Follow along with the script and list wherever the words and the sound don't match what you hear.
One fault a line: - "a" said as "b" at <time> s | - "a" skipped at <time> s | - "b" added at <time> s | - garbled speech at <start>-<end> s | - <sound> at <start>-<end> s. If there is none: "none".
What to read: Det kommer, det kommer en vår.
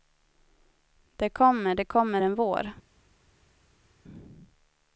none